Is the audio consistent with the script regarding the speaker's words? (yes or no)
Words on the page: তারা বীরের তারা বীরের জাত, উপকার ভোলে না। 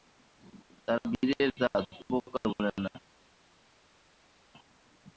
no